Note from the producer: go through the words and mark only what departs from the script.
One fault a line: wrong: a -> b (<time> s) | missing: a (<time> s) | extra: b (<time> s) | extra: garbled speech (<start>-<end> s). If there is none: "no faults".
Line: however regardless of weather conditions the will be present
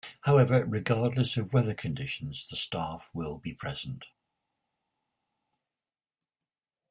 extra: staff (2.5 s)